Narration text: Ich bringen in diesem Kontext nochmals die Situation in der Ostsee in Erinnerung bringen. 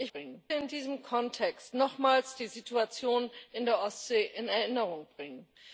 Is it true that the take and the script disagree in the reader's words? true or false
false